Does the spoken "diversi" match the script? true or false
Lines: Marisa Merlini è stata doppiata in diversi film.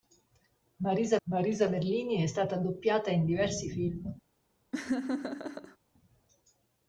true